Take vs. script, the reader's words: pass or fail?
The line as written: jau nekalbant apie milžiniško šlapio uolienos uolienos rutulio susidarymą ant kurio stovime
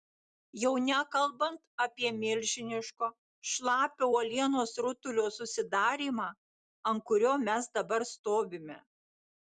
fail